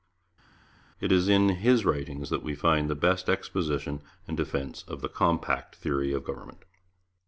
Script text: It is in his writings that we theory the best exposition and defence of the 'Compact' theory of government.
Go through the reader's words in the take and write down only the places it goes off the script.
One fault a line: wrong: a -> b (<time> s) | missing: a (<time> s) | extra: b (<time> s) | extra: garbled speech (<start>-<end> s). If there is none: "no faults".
wrong: theory -> find (2.5 s)